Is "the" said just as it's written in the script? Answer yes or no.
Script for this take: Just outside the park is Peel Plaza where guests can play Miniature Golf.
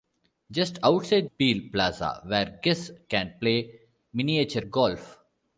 no